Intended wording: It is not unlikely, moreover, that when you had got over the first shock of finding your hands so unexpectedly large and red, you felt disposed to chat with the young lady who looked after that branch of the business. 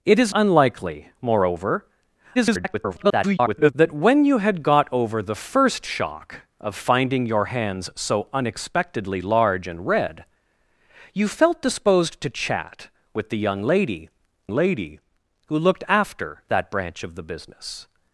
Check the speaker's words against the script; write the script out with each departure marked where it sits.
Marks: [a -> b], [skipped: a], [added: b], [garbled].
It is [skipped: not] unlikely, moreover, [garbled] that when you had got over the first shock of finding your hands so unexpectedly large and red, you felt disposed to chat with the young lady [added: lady] who looked after that branch of the business.